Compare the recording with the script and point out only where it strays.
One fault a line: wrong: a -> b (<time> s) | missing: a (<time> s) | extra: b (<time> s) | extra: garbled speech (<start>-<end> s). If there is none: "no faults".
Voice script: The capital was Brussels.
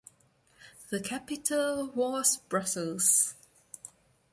no faults